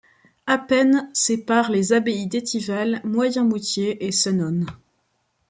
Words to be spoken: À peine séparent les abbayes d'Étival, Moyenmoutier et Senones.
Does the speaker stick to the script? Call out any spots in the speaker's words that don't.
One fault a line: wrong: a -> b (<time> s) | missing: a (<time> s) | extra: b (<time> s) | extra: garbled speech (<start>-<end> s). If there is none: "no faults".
no faults